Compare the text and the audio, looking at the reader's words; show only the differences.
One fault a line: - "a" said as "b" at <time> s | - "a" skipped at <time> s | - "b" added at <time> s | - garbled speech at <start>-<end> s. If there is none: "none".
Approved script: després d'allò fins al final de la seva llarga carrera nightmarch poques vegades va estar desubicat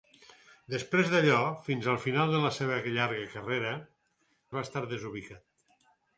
- "nightmarch poques vegades" skipped at 3.8 s